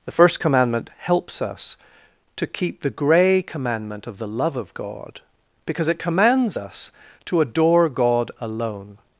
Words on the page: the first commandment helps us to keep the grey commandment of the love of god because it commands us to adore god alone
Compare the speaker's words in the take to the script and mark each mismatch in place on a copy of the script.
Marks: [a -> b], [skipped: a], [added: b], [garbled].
the first commandment helps us to keep the grey commandment of the love of god because it commands us to adore god alone